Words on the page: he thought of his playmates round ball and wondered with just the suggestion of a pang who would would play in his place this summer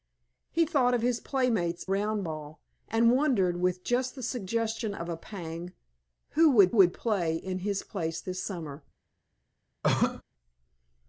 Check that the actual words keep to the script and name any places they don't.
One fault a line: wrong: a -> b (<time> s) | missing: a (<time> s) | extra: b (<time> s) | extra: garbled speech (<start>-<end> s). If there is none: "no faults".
no faults